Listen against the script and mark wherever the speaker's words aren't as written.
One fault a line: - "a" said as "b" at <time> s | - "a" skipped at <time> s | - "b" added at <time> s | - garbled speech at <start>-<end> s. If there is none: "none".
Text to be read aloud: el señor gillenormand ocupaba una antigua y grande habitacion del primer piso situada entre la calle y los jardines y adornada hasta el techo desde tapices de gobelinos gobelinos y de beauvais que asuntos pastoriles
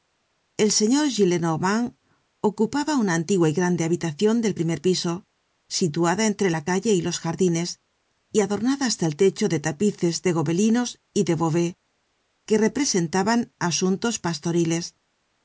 - "desde" said as "de" at 9.5 s
- "gobelinos" skipped at 10.9 s
- "representaban" added at 12.6 s